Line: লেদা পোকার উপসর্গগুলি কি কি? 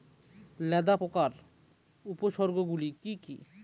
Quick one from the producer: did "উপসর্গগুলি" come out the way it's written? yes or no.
yes